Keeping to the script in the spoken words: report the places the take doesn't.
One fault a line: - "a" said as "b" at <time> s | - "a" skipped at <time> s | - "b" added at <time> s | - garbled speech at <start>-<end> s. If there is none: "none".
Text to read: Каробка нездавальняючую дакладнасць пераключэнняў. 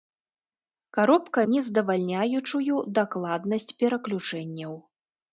none